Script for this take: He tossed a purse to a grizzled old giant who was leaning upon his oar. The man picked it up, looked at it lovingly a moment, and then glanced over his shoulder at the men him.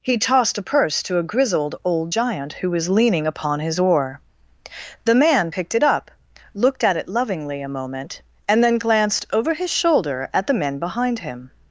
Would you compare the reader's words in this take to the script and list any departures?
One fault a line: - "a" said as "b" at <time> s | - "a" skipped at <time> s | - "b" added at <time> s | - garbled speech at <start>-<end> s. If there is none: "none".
- "behind" added at 10.8 s